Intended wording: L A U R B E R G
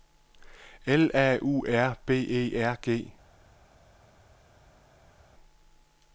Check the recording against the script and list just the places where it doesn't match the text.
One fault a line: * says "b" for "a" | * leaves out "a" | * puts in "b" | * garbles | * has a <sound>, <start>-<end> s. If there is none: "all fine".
all fine